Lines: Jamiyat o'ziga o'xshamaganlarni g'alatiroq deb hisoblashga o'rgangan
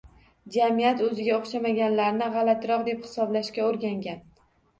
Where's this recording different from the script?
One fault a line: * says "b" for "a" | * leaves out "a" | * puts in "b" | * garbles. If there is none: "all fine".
all fine